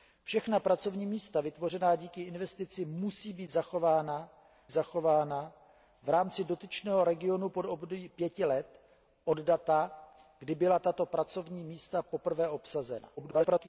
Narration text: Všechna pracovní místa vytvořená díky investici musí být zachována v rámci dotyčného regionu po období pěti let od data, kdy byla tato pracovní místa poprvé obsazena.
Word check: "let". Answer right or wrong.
right